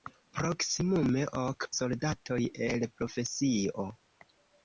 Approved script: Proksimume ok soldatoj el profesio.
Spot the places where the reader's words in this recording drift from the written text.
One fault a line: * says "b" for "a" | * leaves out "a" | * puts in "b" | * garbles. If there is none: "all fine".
all fine